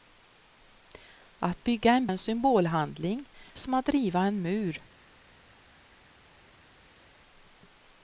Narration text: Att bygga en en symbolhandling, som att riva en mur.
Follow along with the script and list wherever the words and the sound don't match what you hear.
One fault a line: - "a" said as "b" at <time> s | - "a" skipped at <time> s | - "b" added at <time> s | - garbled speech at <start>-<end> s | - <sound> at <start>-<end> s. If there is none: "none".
none